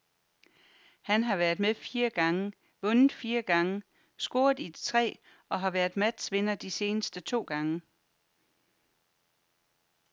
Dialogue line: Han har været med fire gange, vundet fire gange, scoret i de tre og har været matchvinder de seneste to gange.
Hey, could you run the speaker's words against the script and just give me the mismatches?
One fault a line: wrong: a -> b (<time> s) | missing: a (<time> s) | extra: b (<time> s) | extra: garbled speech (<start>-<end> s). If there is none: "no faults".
no faults